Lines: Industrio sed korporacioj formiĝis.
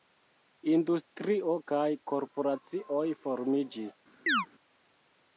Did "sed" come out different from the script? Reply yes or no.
yes